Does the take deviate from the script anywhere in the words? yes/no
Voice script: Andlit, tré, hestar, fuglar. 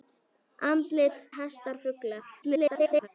yes